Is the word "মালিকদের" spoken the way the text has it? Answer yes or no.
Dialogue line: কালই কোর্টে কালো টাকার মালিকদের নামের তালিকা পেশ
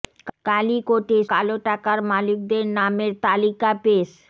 yes